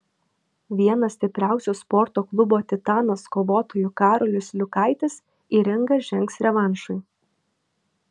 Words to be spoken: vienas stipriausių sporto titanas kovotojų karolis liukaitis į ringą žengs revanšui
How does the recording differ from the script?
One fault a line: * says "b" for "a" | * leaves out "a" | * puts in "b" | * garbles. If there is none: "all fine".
* puts in "klubo"